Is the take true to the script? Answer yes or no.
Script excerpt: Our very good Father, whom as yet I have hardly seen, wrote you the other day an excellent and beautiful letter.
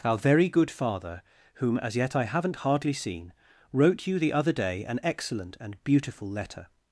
no